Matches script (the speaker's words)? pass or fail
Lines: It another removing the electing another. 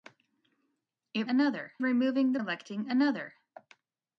pass